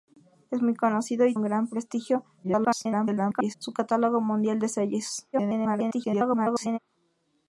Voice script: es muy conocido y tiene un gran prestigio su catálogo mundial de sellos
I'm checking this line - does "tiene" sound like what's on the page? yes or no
no